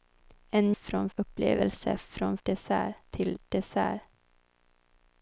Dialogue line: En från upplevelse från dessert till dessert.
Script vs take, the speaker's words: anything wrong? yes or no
no